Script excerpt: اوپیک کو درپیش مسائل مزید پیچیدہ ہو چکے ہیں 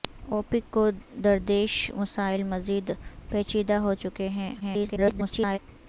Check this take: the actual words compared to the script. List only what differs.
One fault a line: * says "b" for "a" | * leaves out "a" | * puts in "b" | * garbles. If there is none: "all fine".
* garbles